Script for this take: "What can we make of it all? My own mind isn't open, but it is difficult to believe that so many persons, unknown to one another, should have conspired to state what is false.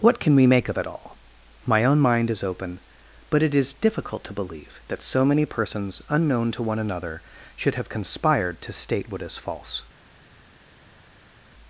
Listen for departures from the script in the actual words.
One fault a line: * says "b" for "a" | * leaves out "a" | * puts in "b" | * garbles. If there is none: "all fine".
* says "is" for "isn't"